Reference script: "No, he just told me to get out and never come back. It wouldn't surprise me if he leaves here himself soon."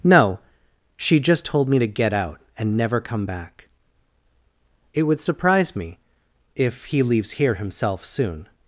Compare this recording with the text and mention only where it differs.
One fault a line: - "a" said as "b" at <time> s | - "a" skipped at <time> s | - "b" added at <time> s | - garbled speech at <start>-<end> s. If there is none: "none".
- "he" said as "she" at 0.9 s
- "wouldn't" said as "would" at 5.0 s